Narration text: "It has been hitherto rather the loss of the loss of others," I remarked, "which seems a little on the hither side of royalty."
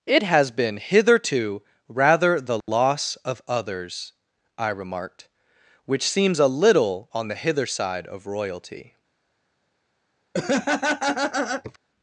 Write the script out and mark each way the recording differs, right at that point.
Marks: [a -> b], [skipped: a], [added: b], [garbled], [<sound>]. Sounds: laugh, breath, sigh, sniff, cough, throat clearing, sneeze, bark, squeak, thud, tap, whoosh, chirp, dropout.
"It has been hitherto rather the loss [dropout] of [skipped: the loss of] others," I remarked, "which seems a little on the hither side of royalty." [laugh]